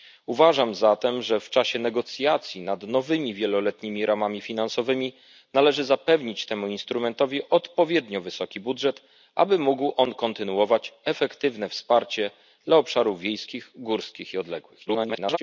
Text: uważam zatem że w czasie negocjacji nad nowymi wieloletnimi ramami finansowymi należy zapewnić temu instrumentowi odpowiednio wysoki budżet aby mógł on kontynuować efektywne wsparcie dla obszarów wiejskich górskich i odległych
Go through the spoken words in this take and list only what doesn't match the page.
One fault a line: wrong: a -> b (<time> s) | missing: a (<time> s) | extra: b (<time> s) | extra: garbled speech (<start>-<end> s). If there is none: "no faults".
extra: garbled speech (14.9-15.4 s)